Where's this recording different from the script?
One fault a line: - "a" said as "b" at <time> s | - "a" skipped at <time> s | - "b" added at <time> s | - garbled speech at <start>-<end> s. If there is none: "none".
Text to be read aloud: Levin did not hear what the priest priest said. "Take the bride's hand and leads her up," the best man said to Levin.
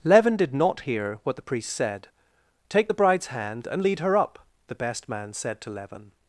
- "priest" skipped at 1.7 s
- "leads" said as "lead" at 3.8 s